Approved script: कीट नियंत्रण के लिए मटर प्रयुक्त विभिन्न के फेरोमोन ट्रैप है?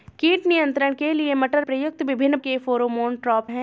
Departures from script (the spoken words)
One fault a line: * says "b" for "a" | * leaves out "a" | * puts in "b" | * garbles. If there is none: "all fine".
all fine